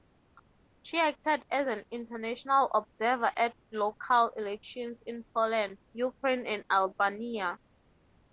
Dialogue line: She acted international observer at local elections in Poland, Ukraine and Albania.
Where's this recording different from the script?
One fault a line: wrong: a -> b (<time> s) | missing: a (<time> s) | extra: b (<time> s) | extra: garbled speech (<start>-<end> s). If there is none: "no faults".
extra: as an (1.5 s)